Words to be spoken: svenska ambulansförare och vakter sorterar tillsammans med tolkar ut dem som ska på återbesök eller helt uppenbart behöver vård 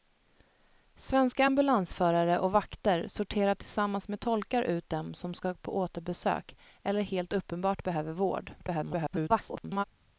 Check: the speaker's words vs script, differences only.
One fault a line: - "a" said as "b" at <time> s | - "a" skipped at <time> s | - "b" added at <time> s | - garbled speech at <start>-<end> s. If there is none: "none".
- garbled speech at 8.6-9.8 s